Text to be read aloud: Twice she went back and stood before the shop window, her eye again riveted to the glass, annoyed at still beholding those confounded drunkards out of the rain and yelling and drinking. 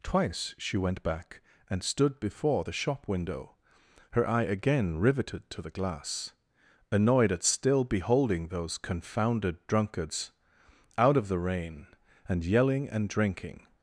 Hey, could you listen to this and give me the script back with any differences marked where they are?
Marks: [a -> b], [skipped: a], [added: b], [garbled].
Twice she went back and stood before the shop window, her eye again riveted to the glass, annoyed at still beholding those confounded drunkards out of the rain and yelling and drinking.